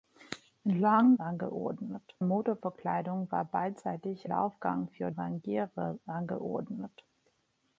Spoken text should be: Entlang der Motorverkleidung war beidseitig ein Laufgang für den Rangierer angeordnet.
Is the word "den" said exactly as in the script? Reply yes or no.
no